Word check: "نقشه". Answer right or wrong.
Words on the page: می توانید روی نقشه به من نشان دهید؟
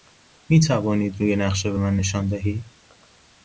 right